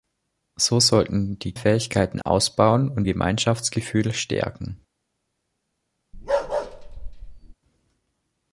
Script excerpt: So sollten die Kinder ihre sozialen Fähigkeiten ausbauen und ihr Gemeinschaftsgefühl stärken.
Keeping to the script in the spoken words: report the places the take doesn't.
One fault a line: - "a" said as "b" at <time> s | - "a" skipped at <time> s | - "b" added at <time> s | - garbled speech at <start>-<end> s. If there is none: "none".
- "Kinder ihre sozialen" skipped at 1.5 s
- "ihr" skipped at 3.1 s